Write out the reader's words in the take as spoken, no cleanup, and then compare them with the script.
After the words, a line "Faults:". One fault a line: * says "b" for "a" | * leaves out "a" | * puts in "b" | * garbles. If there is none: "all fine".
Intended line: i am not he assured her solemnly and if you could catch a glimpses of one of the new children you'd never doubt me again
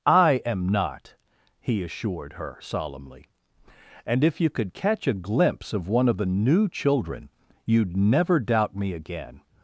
i am not he assured her solemnly and if you could catch a glimpse of one of the new children you'd never doubt me again
Faults:
* says "glimpse" for "glimpses"